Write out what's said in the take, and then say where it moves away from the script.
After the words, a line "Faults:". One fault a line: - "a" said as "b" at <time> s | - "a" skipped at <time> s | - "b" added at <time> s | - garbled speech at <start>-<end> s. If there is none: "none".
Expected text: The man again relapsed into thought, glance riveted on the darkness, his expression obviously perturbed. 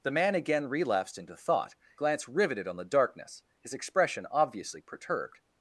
The man again relapsed into thought, glance riveted on the darkness, his expression obviously perturbed.
Faults:
none